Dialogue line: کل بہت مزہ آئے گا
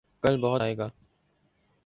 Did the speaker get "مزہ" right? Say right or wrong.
wrong